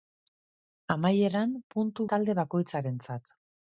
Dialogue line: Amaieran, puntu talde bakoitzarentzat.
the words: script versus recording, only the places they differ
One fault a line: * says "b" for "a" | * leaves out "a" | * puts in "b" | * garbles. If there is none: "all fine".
all fine